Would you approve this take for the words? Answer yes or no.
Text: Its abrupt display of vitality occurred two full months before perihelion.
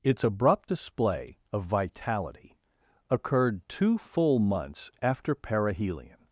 no